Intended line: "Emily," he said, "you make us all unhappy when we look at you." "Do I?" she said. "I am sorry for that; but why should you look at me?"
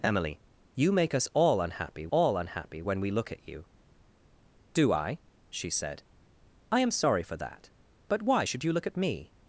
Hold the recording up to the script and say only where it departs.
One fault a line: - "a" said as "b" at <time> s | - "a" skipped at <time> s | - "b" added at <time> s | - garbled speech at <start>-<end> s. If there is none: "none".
- "he said" skipped at 0.4 s
- "all unhappy" added at 2.1 s